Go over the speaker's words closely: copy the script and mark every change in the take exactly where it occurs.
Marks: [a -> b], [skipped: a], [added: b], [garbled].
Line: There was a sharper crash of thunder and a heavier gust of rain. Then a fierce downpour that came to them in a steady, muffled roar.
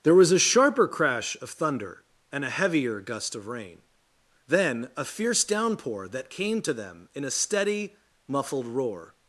There was a sharper crash of thunder and a heavier gust of rain. Then a fierce downpour that came to them in a steady, muffled roar.